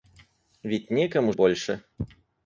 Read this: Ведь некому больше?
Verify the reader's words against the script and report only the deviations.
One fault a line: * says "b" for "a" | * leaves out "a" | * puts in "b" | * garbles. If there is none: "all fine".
all fine